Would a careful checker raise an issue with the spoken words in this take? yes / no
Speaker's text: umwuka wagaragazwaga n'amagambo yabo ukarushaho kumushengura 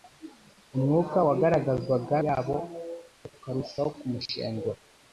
yes